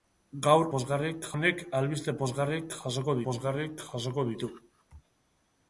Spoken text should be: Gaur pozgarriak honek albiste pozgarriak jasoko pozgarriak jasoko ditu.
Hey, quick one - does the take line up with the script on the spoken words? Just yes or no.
yes